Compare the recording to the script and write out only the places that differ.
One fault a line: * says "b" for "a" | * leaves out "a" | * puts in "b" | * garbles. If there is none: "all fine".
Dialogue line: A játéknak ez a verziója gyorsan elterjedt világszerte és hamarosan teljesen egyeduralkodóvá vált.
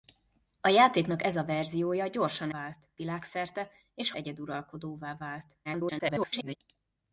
* says "vált" for "elterjedt"
* leaves out "hamarosan teljesen"
* garbles